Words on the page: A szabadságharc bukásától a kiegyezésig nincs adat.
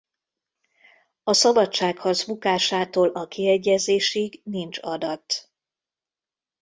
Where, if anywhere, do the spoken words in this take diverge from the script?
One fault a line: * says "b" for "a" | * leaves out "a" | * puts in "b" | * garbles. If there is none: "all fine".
all fine